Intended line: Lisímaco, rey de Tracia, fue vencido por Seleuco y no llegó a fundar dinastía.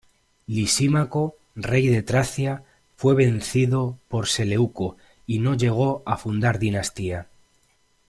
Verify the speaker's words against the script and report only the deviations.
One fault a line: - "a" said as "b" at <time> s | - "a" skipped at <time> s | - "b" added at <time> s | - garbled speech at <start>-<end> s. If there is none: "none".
none